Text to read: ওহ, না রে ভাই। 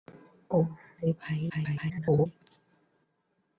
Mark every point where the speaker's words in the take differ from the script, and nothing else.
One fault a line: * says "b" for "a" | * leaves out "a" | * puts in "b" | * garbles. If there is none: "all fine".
* leaves out "না"
* garbles